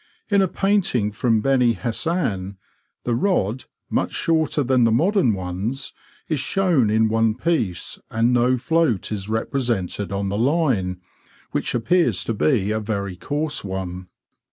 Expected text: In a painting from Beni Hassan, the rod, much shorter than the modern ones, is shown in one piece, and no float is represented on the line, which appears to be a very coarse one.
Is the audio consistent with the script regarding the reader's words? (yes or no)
yes